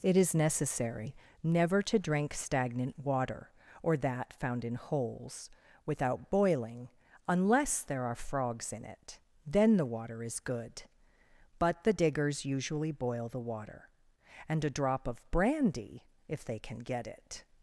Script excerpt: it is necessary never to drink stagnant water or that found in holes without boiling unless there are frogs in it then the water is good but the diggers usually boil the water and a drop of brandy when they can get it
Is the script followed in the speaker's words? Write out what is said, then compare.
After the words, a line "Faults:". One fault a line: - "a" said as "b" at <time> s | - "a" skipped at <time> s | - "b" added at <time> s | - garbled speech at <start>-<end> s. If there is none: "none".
it is necessary never to drink stagnant water or that found in holes without boiling unless there are frogs in it then the water is good but the diggers usually boil the water and a drop of brandy if they can get it
Faults:
- "when" said as "if" at 16.3 s